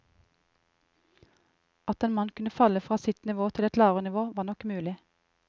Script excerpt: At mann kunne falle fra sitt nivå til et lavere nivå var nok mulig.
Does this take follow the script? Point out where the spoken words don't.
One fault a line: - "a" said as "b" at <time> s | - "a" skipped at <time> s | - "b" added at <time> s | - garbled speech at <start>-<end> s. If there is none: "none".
- "en" added at 2.0 s